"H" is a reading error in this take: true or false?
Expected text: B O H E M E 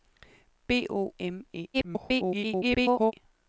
true